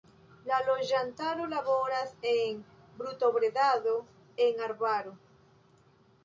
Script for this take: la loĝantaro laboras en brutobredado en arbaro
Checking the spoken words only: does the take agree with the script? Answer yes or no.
yes